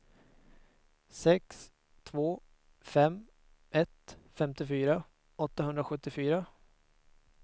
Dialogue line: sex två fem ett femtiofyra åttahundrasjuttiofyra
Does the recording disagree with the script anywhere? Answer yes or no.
no